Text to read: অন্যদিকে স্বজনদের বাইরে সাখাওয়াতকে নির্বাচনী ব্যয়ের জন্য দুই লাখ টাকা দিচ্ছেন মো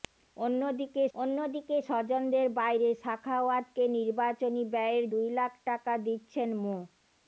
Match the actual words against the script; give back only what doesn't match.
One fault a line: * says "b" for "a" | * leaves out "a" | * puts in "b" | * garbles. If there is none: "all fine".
* puts in "অন্যদিকে"
* leaves out "জন্য"